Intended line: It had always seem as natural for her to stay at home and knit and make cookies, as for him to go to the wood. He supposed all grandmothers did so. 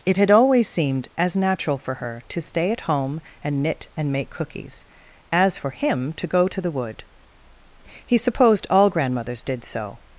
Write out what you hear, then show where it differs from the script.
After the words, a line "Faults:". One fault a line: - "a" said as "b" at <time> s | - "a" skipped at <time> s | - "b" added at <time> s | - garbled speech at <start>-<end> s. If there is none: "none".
It had always seemed as natural for her to stay at home and knit and make cookies, as for him to go to the wood. He supposed all grandmothers did so.
Faults:
- "seem" said as "seemed" at 0.7 s